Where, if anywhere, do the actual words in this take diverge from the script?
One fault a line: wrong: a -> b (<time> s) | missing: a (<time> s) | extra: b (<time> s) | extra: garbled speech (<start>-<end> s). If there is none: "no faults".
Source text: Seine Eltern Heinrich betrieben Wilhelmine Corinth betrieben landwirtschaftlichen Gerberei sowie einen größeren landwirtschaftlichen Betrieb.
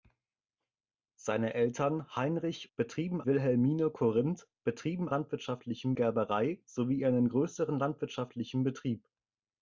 no faults